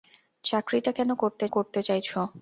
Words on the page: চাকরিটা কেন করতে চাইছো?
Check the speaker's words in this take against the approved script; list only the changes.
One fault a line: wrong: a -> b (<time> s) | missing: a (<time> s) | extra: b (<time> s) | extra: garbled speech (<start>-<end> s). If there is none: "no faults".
extra: করতে (1.5 s)